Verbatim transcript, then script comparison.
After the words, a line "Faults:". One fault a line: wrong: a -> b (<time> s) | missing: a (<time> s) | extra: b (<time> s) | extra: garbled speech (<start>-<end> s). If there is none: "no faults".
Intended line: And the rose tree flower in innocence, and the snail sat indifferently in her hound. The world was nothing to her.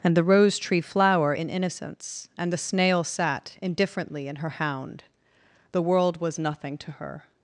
And the rose tree flower in innocence, and the snail sat indifferently in her hound. The world was nothing to her.
Faults:
no faults